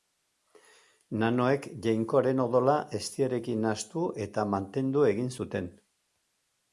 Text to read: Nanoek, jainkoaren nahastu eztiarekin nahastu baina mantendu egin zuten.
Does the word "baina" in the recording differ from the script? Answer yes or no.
yes